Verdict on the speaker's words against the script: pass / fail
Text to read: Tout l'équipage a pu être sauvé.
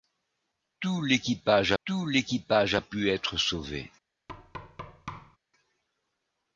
fail